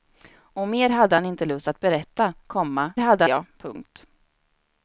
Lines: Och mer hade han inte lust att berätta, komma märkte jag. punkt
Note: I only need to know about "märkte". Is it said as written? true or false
false